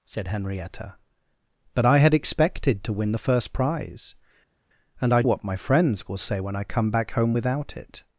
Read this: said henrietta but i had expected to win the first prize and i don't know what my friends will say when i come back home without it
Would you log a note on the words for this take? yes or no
yes